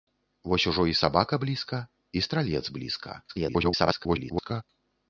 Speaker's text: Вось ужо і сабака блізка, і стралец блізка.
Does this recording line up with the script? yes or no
no